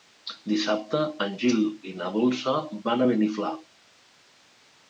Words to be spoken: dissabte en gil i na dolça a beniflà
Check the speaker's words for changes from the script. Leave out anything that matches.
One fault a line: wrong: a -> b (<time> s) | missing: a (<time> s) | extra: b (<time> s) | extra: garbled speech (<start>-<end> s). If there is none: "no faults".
extra: van (2.9 s)